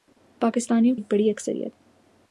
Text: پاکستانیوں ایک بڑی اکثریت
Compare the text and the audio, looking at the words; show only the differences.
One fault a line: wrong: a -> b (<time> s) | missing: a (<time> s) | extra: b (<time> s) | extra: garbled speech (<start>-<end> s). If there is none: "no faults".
no faults